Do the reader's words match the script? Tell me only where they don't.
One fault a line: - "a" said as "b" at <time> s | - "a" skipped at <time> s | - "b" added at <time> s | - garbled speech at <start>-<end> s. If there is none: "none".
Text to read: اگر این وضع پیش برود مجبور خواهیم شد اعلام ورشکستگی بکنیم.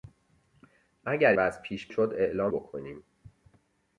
- "این" skipped at 1.3 s
- "برود مجبور خواهیم" skipped at 1.9 s
- "ورشکستگی" skipped at 2.5 s